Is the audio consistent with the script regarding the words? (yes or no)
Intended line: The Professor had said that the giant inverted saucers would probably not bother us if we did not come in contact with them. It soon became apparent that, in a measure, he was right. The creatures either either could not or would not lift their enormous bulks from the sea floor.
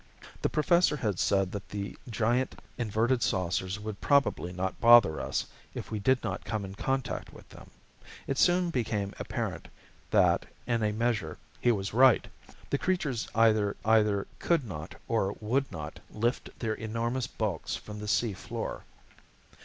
yes